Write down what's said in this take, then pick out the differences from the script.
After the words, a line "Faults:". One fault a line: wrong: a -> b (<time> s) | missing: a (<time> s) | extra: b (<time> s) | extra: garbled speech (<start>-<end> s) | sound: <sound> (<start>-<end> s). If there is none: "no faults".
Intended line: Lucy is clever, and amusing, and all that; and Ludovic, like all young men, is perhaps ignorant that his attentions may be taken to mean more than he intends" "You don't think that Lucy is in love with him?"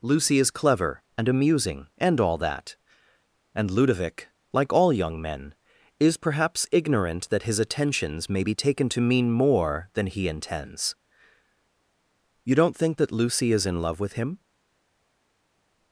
Lucy is clever, and amusing, and all that; and Ludovic, like all young men, is perhaps ignorant that his attentions may be taken to mean more than he intends" "You don't think that Lucy is in love with him?"
Faults:
no faults